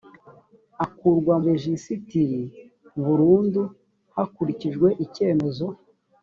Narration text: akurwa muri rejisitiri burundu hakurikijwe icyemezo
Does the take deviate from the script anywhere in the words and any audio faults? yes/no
yes